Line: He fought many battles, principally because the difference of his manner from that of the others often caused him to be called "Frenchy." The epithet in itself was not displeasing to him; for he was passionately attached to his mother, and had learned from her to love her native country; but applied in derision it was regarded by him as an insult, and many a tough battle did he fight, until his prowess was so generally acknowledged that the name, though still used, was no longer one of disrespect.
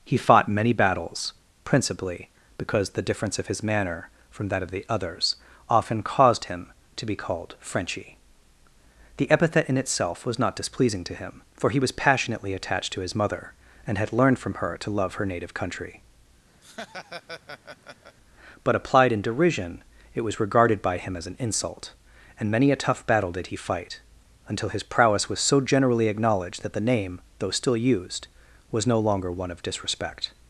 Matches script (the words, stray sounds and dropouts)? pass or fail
fail